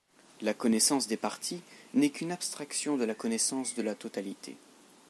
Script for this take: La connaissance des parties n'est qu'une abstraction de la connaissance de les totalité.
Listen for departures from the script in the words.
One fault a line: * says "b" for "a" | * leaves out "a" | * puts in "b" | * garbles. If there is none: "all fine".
* says "la" for "les"